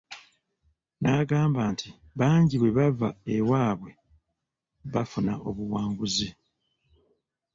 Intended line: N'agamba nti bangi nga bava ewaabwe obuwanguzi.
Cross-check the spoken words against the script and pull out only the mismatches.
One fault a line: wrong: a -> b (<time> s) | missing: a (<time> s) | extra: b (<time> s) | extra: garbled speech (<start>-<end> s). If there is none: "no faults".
wrong: nga -> bwe (2.6 s)
extra: bafuna (4.9 s)